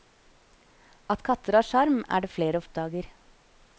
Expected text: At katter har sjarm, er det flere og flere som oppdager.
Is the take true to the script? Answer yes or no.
no